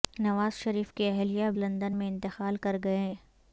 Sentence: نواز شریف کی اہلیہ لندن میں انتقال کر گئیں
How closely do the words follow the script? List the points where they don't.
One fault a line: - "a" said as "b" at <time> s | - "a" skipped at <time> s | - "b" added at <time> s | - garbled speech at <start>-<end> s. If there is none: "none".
none